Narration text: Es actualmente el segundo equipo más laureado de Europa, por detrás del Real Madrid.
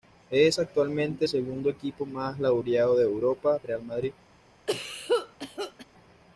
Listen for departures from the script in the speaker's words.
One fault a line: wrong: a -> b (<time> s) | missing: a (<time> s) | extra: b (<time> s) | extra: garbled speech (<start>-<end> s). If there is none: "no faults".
missing: el (1.2 s)
missing: por detrás del (3.6 s)